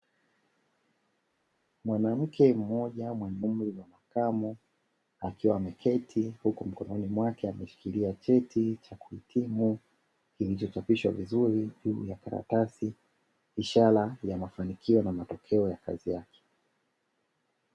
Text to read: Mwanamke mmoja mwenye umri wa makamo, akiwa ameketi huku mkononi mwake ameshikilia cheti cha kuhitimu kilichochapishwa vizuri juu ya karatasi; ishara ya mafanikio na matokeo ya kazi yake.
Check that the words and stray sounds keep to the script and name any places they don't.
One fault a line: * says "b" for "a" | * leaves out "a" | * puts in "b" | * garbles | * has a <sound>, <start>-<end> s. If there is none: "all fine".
all fine